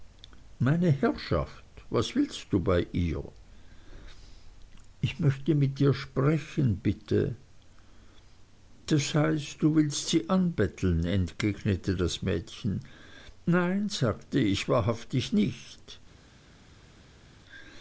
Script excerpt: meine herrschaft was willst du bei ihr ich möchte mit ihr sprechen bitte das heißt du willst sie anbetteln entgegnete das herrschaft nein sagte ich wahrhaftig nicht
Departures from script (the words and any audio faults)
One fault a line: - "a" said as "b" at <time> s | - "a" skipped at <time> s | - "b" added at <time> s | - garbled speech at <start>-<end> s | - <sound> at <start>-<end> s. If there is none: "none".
- "herrschaft" said as "mädchen" at 12.2 s